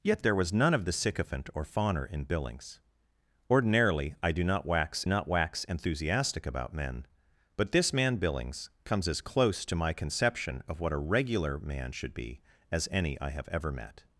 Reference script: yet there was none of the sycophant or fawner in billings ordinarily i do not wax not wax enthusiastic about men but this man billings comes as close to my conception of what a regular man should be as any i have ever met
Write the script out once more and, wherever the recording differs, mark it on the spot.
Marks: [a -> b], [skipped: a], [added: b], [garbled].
yet there was none of the sycophant or fawner in billings ordinarily i do not wax not wax enthusiastic about men but this man billings comes as close to my conception of what a regular man should be as any i have ever met